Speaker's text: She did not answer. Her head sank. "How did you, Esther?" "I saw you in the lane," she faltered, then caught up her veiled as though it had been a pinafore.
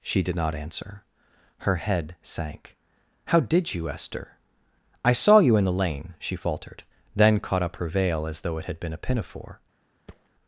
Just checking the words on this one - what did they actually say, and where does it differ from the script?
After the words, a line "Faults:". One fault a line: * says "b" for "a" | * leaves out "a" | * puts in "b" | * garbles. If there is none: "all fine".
She did not answer. Her head sank. "How did you, Esther?" "I saw you in the lane," she faltered, then caught up her veil as though it had been a pinafore.
Faults:
* says "veil" for "veiled"